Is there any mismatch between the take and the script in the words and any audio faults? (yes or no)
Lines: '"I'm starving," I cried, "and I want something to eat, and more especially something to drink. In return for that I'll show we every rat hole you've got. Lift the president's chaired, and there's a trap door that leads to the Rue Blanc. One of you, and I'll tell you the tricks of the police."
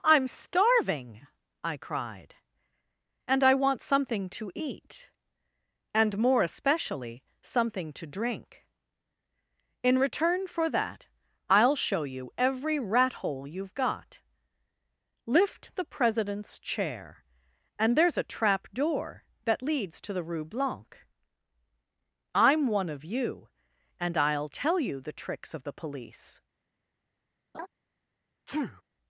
yes